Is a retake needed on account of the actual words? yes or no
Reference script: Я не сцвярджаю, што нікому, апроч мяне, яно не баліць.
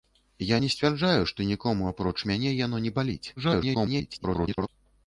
yes